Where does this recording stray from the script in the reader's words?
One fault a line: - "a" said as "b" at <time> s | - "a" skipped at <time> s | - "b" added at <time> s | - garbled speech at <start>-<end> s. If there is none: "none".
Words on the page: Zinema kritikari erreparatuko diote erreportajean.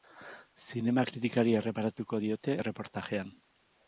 none